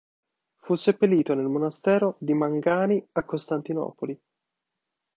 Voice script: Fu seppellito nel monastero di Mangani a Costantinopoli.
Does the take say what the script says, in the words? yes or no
yes